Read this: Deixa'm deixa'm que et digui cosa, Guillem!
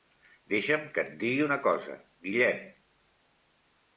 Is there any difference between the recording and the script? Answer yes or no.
yes